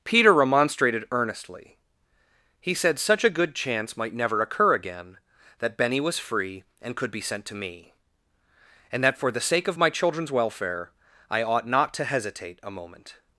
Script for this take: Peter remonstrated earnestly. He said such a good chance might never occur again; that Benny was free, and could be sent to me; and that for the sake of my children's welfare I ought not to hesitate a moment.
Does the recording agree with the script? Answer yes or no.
yes